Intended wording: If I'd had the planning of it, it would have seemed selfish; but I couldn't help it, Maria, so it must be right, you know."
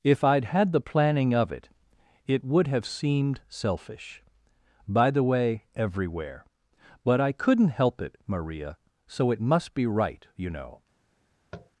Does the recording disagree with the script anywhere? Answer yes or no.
yes